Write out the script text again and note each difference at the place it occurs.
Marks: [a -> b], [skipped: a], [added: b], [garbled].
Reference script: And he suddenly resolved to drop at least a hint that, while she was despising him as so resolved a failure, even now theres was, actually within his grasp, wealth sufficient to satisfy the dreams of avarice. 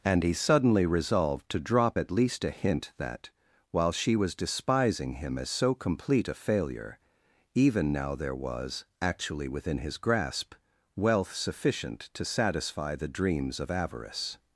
And he suddenly resolved to drop at least a hint that, while she was despising him as so [resolved -> complete] a failure, even now [theres -> there] was, actually within his grasp, wealth sufficient to satisfy the dreams of avarice.